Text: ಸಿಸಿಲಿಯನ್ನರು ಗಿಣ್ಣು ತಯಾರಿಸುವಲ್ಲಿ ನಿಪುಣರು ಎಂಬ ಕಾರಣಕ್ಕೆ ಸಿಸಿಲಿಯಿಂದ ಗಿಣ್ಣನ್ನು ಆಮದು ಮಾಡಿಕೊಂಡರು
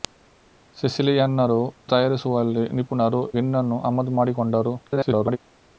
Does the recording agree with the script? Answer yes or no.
no